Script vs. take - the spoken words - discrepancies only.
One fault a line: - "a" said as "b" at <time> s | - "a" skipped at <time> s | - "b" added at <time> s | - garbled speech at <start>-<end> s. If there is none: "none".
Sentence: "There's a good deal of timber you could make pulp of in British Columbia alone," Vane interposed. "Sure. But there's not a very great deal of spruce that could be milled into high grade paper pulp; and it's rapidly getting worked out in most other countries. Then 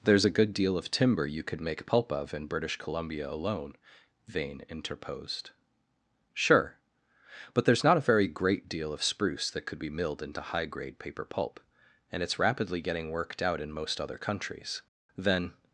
none